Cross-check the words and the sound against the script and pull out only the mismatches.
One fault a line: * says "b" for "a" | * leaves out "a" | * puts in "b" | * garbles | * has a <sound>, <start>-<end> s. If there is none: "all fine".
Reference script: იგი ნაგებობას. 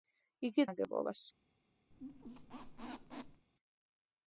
* has a squeak, 1.9-3.5 s